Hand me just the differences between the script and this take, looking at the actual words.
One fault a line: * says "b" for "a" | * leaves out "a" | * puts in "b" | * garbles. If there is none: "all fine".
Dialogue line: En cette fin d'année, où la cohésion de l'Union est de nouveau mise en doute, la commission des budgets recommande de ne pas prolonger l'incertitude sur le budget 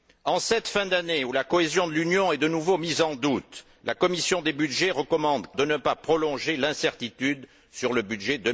all fine